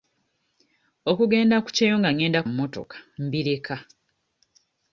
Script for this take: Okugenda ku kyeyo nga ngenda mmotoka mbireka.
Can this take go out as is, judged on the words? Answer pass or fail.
pass